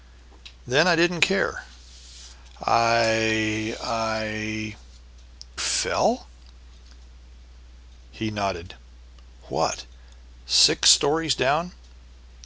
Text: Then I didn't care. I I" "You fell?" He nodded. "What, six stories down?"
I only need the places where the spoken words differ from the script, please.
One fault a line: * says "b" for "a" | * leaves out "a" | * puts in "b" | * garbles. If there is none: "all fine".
* leaves out "You"